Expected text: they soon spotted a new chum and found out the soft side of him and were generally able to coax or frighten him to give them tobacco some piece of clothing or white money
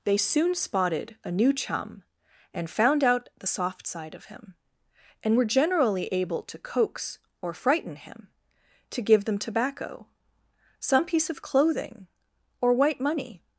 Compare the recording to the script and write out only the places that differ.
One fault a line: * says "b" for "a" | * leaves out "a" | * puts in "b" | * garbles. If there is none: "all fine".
all fine